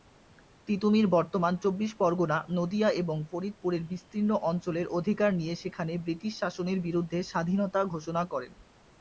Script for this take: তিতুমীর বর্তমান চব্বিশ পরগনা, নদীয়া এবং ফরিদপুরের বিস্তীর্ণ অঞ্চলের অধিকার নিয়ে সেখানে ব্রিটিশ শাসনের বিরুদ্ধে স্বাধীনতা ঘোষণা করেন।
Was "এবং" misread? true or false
false